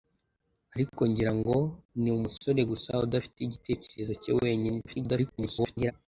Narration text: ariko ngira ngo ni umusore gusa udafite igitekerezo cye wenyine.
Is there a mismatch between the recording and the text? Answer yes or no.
yes